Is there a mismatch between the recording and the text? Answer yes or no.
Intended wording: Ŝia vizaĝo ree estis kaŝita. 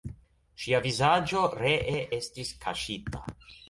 no